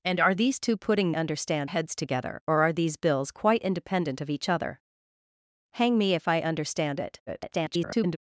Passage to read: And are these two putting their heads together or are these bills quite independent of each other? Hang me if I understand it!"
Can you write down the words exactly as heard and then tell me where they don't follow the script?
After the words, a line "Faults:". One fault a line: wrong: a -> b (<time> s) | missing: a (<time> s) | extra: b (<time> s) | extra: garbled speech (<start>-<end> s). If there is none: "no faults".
And are these two putting understand heads together or are these bills quite independent of each other? Hang me if I understand it!" [garbled]
Faults:
wrong: their -> understand (1.1 s)
extra: garbled speech (7.3-8.2 s)